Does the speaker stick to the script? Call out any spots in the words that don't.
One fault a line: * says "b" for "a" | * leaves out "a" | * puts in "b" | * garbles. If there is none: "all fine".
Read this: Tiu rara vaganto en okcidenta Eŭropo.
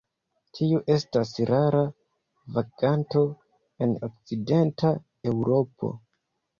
* puts in "estas"